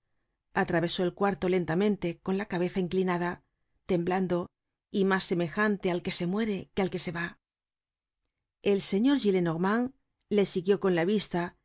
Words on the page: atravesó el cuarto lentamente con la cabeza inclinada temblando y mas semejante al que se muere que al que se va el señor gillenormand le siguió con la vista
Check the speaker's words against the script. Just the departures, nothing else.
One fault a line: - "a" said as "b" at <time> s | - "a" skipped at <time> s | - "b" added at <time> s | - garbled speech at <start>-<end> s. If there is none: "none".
none